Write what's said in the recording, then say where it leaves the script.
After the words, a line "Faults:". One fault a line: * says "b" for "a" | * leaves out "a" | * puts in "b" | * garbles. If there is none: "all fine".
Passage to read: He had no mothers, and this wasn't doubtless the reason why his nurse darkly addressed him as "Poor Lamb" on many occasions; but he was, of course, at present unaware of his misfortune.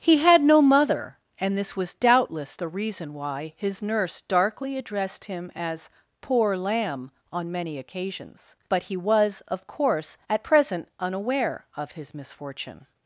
He had no mother, and this was doubtless the reason why his nurse darkly addressed him as "Poor Lamb" on many occasions; but he was, of course, at present unaware of his misfortune.
Faults:
* says "mother" for "mothers"
* says "was" for "wasn't"